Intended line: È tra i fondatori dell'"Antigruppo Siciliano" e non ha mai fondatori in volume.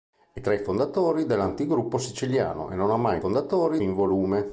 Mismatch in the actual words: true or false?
false